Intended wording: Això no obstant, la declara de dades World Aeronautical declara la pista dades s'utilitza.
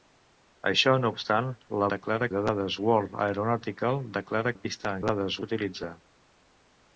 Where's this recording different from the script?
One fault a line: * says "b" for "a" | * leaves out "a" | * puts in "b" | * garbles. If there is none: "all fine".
all fine